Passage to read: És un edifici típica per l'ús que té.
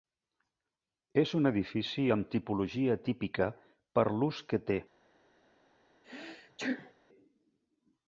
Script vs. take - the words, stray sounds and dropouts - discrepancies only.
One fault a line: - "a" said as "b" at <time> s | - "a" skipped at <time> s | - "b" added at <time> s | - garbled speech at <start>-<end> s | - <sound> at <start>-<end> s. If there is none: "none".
- "amb tipologia" added at 2.2 s
- sneeze at 6.0-6.9 s